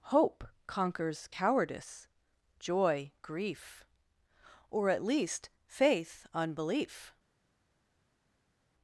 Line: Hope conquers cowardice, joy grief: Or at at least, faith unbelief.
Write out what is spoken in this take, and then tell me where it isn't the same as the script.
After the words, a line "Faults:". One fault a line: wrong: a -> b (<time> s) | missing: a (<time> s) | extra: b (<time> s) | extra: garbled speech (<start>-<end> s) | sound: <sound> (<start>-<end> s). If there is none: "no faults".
Hope conquers cowardice, joy grief: Or at least, faith unbelief.
Faults:
missing: at (5.0 s)